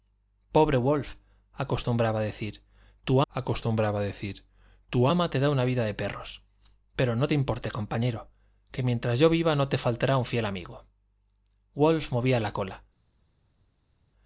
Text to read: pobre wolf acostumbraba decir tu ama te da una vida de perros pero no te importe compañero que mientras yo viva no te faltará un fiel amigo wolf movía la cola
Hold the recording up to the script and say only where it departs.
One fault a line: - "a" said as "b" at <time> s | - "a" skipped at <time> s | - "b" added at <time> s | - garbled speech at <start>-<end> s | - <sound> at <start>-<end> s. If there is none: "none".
- "acostumbraba decir tu" added at 3.3 s